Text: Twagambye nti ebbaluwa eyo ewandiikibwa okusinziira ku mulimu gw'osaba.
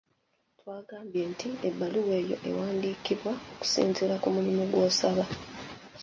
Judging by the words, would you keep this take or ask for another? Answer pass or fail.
pass